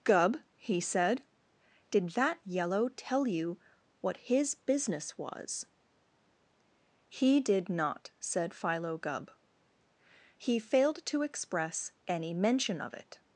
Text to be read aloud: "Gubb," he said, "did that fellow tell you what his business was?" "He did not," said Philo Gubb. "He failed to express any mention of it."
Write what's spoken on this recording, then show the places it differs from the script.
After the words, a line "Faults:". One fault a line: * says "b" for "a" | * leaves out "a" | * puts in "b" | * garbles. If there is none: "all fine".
"Gubb," he said, "did that yellow tell you what his business was?" "He did not," said Philo Gubb. "He failed to express any mention of it."
Faults:
* says "yellow" for "fellow"